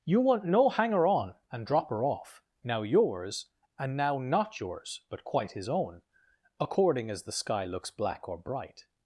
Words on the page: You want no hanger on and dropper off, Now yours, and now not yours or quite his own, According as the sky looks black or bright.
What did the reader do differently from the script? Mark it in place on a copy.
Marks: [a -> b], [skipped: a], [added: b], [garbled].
You want no hanger on and dropper off, Now yours, and now not yours [or -> but] quite his own, According as the sky looks black or bright.